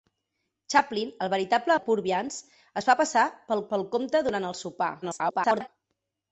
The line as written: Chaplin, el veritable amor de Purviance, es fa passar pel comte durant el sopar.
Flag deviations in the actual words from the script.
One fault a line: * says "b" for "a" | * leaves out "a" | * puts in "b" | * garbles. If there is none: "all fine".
* leaves out "amor"
* puts in "pel"
* garbles